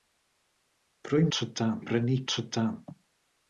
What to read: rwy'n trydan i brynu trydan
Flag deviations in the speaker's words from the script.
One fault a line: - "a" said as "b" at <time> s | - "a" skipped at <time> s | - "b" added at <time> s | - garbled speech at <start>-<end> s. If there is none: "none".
none